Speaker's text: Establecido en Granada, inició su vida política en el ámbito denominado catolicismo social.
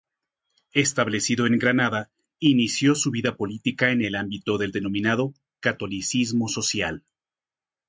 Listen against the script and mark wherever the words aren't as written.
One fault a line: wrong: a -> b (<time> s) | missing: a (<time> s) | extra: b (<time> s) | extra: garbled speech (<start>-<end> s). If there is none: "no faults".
extra: del (4.6 s)